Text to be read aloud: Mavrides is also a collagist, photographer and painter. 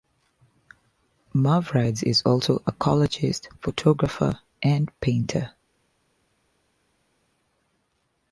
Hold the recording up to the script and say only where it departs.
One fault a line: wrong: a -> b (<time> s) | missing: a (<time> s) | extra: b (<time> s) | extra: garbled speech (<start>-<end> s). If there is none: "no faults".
no faults